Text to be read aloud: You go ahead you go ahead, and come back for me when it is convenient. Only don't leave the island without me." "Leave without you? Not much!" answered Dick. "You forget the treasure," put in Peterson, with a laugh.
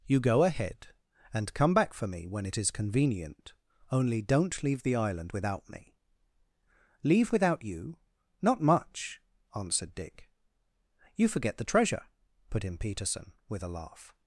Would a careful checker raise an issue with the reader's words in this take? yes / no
yes